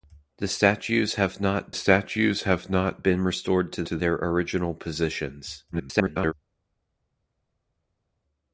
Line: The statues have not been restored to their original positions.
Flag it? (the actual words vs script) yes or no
yes